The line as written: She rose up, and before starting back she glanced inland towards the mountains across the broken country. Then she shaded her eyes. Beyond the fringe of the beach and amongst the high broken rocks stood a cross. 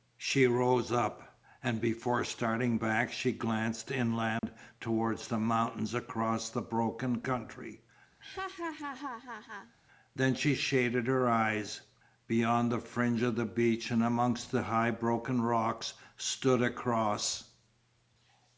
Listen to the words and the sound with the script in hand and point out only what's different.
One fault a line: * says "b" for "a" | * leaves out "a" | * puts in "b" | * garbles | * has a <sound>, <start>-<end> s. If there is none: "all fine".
* has a dropout, 4.4-4.4 s
* has a laugh, 8.2-9.8 s